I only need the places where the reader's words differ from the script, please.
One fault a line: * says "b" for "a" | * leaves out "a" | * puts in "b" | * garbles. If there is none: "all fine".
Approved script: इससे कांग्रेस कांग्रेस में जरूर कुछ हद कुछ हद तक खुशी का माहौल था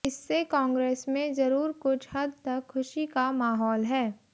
* leaves out "कांग्रेस"
* leaves out "कुछ हद"
* says "है" for "था"